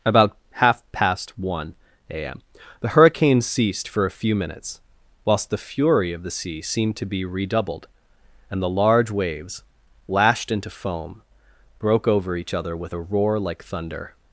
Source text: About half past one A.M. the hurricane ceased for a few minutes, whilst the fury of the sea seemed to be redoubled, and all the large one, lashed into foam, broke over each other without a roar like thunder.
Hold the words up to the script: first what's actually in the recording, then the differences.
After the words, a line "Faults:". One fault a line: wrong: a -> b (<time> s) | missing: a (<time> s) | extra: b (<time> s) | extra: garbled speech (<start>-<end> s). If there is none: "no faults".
About half past one A.M. the hurricane ceased for a few minutes, whilst the fury of the sea seemed to be redoubled, and the large waves, lashed into foam, broke over each other with a roar like thunder.
Faults:
missing: all (8.6 s)
wrong: one -> waves (9.1 s)
wrong: without -> with (12.8 s)